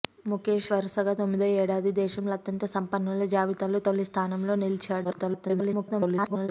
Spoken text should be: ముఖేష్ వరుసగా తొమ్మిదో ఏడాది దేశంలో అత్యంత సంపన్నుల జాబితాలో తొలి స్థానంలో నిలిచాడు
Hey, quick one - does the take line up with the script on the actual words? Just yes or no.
no